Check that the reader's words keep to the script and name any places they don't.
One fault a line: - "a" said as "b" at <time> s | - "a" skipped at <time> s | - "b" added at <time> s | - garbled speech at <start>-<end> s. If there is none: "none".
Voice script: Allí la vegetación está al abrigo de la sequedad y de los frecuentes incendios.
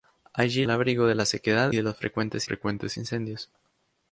- "la vegetación está" skipped at 0.7 s
- "y" skipped at 1.7 s
- "frecuentes" added at 2.4 s